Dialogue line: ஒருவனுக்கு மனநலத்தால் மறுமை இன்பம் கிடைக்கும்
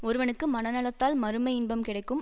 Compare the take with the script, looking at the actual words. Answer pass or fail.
pass